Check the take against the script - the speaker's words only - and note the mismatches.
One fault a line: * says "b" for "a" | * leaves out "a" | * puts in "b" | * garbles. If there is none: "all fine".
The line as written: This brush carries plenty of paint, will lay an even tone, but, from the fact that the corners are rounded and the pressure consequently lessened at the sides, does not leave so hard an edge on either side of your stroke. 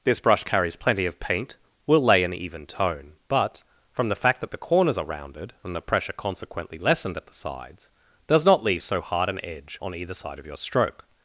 all fine